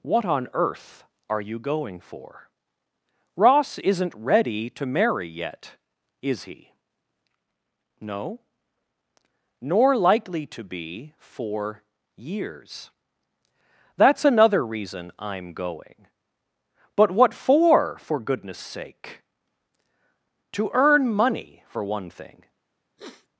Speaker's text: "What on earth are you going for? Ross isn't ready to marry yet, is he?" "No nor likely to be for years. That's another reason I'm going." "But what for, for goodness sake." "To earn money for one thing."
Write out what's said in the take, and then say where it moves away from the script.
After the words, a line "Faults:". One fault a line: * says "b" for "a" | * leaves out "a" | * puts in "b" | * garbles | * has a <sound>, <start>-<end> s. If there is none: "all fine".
"What on earth are you going for? Ross isn't ready to marry yet, is he?" "No nor likely to be for years. That's another reason I'm going." "But what for, for goodness sake." "To earn money for one thing."
Faults:
* has a sniff, 23.0-23.3 s